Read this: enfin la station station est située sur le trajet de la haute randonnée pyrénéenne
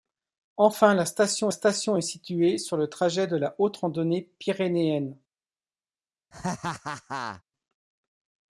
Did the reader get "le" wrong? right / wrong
right